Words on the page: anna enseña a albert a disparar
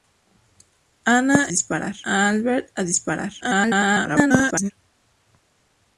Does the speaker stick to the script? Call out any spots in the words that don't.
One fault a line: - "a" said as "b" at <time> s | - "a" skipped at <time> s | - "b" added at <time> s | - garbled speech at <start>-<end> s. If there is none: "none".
- "enseña" said as "disparar" at 1.5 s
- garbled speech at 3.4-4.7 s